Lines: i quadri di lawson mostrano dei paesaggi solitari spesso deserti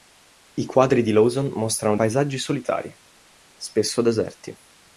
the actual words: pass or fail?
fail